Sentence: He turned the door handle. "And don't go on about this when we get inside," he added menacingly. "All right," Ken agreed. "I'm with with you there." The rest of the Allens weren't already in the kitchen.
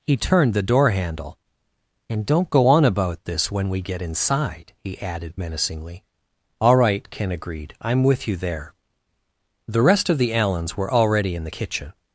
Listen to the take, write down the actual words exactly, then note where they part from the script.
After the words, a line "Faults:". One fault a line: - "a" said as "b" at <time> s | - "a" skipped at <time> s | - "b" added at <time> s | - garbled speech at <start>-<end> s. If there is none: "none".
He turned the door handle. "And don't go on about this when we get inside," he added menacingly. "All right," Ken agreed. "I'm with you there." The rest of the Allens were already in the kitchen.
Faults:
- "with" skipped at 8.3 s
- "weren't" said as "were" at 10.8 s